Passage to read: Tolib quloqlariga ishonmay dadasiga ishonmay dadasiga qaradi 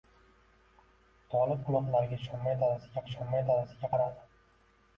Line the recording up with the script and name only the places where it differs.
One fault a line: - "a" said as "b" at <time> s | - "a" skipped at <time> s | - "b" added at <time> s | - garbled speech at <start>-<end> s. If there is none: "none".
none